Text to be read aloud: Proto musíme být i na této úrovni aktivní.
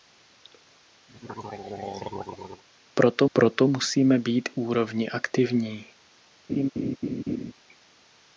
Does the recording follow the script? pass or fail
fail